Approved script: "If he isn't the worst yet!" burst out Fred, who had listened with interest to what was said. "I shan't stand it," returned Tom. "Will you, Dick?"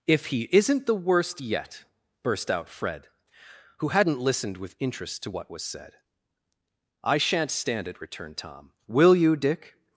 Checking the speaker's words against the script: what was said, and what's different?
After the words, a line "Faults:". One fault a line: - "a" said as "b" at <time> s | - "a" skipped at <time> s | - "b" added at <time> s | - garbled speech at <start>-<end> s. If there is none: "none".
"If he isn't the worst yet!" burst out Fred, who hadn't listened with interest to what was said. "I shan't stand it," returned Tom. "Will you, Dick?"
Faults:
- "had" said as "hadn't" at 3.9 s